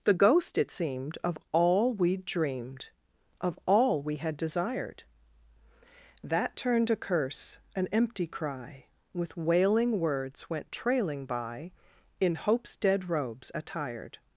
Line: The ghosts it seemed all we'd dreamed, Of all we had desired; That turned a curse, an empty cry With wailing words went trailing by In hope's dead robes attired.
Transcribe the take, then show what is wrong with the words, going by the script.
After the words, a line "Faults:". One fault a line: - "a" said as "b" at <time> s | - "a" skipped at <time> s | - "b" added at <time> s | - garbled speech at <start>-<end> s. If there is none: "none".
The ghost it seemed of all we'd dreamed, Of all we had desired; That turned a curse, an empty cry With wailing words went trailing by In hope's dead robes attired.
Faults:
- "ghosts" said as "ghost" at 0.1 s
- "of" added at 1.2 s